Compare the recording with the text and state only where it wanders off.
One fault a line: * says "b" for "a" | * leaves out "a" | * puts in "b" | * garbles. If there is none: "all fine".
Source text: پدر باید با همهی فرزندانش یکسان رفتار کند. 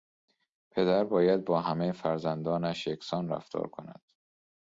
all fine